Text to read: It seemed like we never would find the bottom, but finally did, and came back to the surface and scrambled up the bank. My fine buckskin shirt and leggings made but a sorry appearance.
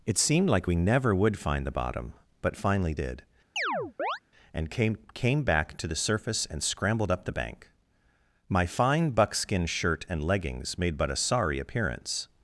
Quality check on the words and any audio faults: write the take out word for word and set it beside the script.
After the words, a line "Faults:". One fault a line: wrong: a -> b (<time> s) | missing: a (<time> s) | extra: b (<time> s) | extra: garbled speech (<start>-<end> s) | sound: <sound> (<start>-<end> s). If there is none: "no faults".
It seemed like we never would find the bottom, but finally did, and came came back to the surface and scrambled up the bank. My fine buckskin shirt and leggings made but a sorry appearance.
Faults:
sound: chirp (3.6-4.2 s)
extra: came (5.1 s)